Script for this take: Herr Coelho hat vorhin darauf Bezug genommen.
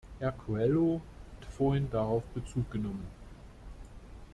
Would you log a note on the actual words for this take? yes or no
yes